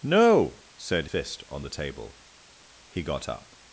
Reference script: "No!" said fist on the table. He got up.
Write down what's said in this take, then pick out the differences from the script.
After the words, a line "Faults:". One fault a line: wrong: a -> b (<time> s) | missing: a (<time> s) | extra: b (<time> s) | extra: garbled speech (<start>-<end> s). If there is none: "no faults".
"No!" said fist on the table. He got up.
Faults:
no faults